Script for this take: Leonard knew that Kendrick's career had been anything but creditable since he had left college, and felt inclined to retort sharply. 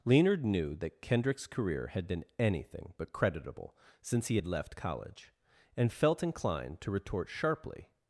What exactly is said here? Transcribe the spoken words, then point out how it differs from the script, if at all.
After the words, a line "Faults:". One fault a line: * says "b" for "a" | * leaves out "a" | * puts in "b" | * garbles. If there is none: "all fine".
Leonard knew that Kendrick's career had been anything but creditable since he had left college, and felt inclined to retort sharply.
Faults:
all fine